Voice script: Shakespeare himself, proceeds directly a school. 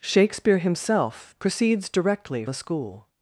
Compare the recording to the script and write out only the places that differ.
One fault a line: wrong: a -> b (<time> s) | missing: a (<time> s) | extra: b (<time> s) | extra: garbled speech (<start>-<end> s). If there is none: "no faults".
no faults